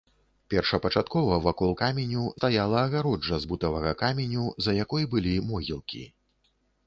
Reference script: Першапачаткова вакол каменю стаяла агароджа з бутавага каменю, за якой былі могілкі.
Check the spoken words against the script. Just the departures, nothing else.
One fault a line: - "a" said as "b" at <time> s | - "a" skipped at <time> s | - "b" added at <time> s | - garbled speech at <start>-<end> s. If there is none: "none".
none